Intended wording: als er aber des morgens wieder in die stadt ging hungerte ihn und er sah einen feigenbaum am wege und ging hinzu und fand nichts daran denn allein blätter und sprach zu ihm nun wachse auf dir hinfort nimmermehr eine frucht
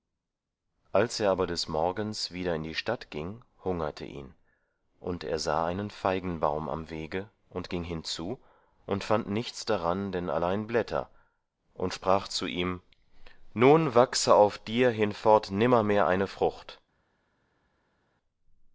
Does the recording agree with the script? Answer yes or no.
yes